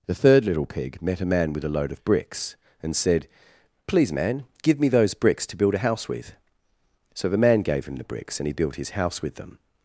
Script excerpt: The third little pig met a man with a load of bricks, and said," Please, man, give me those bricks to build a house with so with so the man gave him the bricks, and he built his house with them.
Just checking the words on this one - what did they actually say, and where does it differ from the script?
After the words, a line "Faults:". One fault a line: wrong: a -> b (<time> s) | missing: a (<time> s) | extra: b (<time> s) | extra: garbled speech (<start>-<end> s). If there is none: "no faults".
The third little pig met a man with a load of bricks, and said," Please, man, give me those bricks to build a house with so the man gave him the bricks, and he built his house with them.
Faults:
missing: with so (7.3 s)